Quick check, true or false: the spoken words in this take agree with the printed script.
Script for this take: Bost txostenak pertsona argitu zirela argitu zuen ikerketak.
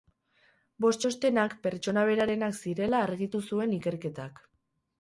false